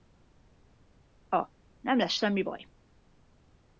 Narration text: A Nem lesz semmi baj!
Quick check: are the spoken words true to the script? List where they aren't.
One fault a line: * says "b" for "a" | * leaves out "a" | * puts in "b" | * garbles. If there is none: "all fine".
all fine